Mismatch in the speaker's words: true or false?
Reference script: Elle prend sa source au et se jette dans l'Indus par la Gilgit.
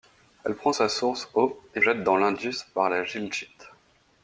true